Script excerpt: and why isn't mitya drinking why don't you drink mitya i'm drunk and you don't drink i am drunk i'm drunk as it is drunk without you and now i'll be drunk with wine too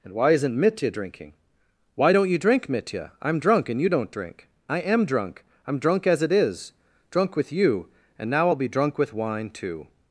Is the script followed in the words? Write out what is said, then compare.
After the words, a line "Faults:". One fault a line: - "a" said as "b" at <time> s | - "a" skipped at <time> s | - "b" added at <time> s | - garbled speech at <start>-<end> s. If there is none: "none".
and why isn't mitya drinking why don't you drink mitya i'm drunk and you don't drink i am drunk i'm drunk as it is drunk with you and now i'll be drunk with wine too
Faults:
- "without" said as "with" at 7.4 s